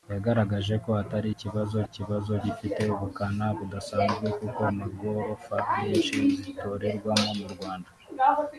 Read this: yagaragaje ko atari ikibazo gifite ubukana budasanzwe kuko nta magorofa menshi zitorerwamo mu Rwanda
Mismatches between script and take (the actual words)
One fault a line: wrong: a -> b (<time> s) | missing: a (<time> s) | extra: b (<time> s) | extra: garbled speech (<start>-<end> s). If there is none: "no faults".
extra: ikibazo (1.8 s)
missing: nta (4.6 s)